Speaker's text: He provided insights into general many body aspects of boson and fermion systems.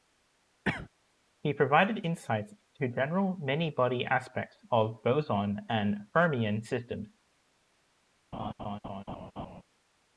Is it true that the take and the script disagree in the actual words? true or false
false